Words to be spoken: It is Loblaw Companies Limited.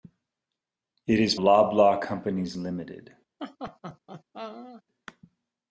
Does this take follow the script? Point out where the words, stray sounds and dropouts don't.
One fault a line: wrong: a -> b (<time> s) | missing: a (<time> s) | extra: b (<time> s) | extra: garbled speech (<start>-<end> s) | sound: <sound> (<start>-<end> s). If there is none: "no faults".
sound: laugh (3.4-4.8 s)